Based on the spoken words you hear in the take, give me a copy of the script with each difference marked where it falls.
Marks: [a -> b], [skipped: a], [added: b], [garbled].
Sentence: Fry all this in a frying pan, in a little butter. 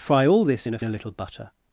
Fry all this in a [skipped: frying pan, in] a little butter.